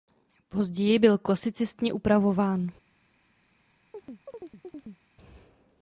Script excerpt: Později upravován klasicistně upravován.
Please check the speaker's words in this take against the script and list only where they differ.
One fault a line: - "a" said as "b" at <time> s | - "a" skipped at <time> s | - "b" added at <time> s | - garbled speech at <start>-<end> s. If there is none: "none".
- "upravován" said as "byl" at 1.0 s